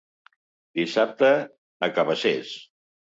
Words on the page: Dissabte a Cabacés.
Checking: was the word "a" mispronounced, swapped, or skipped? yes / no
no